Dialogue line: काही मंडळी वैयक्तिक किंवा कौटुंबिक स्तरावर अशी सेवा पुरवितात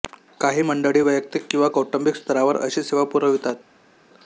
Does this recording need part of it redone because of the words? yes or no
no